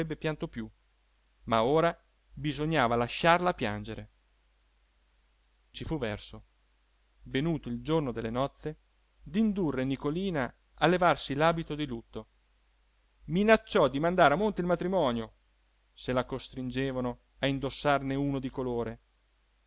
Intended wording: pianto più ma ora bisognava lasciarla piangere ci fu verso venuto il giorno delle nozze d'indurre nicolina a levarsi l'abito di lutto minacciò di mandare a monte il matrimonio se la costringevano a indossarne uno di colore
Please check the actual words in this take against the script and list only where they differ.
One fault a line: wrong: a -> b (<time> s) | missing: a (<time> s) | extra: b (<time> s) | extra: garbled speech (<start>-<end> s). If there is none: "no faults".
no faults